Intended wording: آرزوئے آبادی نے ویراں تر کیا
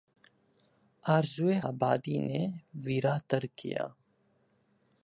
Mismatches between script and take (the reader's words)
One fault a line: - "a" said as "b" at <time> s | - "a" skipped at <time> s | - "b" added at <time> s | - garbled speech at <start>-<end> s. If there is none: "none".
none